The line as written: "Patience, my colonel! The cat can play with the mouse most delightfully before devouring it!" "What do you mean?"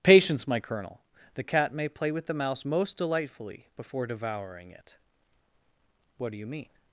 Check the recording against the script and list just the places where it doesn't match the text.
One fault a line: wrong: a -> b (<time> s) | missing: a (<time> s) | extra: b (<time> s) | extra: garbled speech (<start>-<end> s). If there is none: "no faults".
wrong: can -> may (1.7 s)